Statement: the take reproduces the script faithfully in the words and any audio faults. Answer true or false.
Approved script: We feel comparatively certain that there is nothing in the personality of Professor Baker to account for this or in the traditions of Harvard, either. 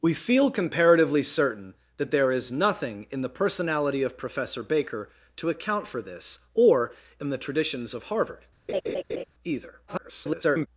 false